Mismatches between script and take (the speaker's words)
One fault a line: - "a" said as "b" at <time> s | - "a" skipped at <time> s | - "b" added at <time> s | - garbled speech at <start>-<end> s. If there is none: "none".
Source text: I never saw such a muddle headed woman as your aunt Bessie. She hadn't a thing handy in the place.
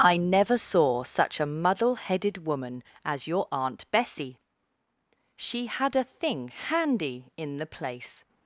- "hadn't" said as "had" at 5.7 s